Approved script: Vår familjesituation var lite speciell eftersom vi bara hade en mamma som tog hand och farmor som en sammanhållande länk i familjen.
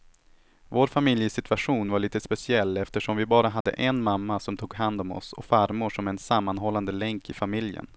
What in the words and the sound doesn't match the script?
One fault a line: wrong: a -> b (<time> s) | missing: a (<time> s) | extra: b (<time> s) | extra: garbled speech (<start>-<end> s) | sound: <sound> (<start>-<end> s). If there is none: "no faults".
sound: dropout (3.6-3.7 s)
extra: om oss (5.0 s)